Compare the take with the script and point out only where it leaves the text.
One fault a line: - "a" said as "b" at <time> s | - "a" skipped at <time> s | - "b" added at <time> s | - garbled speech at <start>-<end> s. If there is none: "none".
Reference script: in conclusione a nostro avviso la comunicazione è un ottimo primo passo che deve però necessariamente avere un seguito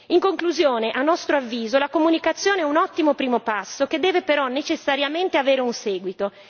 none